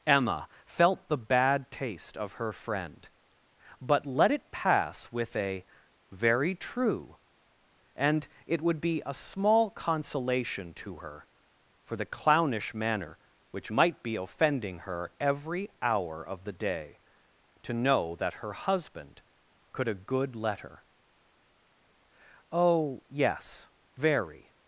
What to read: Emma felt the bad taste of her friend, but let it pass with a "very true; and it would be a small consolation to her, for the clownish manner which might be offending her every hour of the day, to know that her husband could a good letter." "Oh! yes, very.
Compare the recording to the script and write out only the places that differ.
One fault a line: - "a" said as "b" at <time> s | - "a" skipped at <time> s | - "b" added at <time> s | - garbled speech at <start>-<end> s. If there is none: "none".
none